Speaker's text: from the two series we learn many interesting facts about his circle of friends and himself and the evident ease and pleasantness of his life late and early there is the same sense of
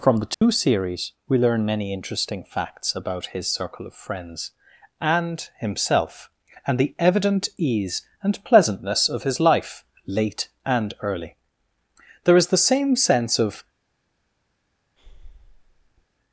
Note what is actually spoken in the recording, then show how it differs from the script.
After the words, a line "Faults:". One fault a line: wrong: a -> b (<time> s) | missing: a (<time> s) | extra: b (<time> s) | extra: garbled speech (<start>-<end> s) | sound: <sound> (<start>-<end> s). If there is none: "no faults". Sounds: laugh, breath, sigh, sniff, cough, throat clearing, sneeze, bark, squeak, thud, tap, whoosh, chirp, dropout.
from the two series we learn many interesting facts about his circle of friends and himself and the evident ease and pleasantness of his life late and early there is the same sense of
Faults:
sound: dropout (0.3-0.4 s)
sound: breath (15.0-16.1 s)